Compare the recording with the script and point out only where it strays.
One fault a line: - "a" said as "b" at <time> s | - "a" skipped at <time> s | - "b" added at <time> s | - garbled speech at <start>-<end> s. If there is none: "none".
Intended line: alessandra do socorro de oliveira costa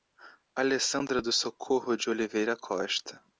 none